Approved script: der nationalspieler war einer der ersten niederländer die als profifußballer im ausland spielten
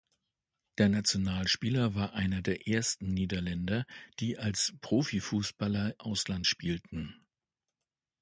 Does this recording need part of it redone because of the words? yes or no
yes